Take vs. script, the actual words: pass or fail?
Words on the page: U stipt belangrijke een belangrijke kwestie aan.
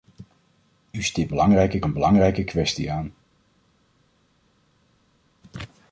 pass